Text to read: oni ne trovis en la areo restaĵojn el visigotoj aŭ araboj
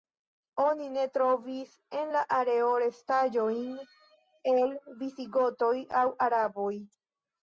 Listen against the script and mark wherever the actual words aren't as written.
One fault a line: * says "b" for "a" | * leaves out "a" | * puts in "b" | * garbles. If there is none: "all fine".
all fine